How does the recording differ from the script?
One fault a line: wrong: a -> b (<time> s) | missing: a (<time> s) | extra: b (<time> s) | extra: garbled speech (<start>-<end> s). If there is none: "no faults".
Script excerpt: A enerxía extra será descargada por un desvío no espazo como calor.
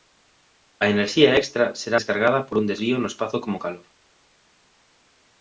no faults